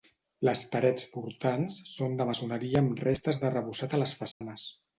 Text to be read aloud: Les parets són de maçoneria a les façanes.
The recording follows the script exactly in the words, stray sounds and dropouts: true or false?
false